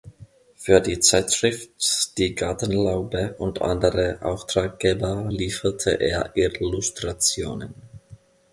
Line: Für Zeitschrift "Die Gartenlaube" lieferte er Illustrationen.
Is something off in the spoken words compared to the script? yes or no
yes